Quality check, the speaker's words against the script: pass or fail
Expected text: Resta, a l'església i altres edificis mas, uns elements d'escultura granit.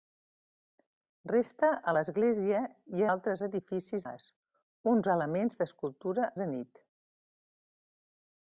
pass